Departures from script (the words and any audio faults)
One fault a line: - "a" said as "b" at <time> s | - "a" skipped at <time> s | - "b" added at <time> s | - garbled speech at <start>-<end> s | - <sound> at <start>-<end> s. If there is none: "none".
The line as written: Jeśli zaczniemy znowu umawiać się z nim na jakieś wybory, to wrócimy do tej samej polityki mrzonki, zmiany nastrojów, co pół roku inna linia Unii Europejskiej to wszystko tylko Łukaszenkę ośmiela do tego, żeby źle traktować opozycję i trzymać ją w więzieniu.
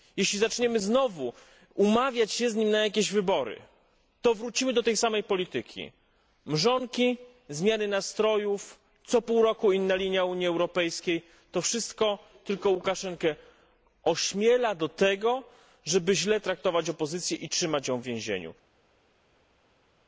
none